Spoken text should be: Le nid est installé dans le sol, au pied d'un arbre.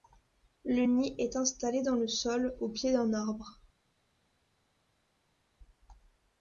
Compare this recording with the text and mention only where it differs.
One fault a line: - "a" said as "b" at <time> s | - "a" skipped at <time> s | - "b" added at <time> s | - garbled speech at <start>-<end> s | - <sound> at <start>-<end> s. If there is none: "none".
none